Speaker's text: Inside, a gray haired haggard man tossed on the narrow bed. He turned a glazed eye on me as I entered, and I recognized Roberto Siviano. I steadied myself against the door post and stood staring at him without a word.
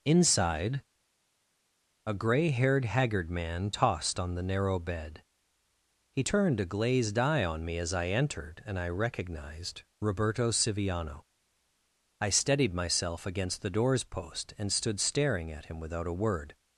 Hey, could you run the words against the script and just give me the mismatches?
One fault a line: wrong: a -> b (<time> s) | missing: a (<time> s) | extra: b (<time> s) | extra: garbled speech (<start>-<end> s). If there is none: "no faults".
wrong: door -> doors (13.7 s)